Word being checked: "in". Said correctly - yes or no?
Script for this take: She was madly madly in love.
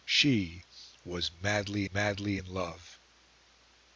yes